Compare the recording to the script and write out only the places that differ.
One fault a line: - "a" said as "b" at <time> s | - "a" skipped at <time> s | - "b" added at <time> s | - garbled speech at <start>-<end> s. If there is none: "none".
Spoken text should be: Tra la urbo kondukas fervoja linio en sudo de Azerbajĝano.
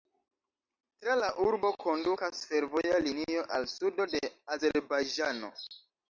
- "en" said as "al" at 3.6 s